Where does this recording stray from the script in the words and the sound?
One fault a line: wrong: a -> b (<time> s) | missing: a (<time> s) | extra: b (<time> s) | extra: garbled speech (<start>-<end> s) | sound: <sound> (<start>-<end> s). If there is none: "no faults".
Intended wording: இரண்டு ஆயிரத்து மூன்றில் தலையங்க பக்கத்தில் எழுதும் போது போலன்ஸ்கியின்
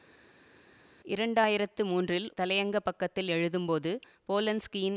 no faults